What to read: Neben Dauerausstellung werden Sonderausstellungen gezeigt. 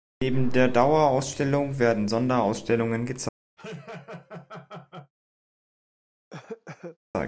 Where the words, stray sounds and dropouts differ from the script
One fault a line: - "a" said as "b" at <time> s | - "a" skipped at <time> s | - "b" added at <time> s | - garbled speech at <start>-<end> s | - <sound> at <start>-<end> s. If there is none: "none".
- "der" added at 0.5 s
- laugh at 3.6-5.1 s
- cough at 6.3-7.0 s